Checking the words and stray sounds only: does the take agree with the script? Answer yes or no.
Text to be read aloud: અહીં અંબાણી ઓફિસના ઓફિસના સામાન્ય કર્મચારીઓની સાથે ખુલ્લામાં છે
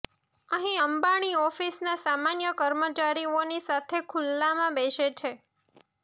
no